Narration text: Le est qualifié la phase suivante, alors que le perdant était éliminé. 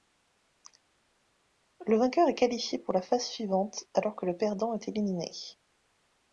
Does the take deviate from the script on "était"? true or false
true